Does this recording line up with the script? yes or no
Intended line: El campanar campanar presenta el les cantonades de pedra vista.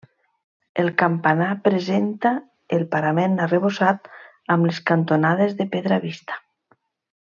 no